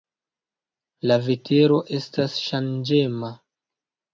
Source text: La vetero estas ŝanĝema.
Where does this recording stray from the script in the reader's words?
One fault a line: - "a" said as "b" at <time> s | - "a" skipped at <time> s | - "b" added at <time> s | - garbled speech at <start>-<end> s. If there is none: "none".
none